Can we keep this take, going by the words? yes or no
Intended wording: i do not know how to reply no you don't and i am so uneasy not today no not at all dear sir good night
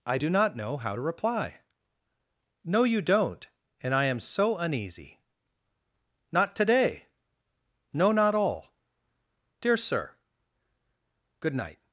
no